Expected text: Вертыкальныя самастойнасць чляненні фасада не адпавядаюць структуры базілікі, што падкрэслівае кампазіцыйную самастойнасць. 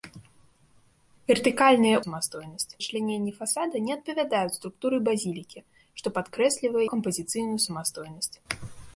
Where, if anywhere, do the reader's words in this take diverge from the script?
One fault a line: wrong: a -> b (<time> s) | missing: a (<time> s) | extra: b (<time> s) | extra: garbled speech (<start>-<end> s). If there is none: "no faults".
no faults